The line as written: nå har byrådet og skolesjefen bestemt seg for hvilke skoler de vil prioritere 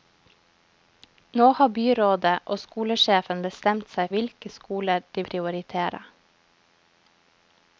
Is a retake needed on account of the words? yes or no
yes